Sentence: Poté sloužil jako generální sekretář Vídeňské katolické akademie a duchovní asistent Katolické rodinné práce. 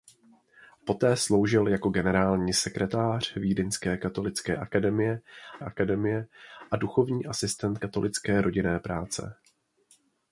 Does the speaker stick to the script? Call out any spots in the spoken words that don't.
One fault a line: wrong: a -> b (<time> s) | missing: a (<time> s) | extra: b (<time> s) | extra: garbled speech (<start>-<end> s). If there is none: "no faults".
extra: akademie (5.6 s)